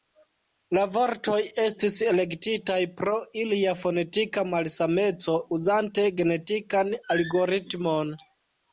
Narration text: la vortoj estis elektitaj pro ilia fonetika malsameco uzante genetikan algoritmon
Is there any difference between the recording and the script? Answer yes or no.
no